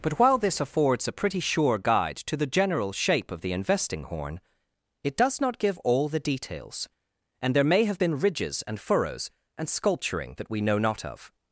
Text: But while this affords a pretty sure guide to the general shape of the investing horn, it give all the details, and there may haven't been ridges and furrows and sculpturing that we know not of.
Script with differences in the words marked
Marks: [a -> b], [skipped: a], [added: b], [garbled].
But while this affords a pretty sure guide to the general shape of the investing horn, it [added: does not] give all the details, and there may [haven't -> have] been ridges and furrows and sculpturing that we know not of.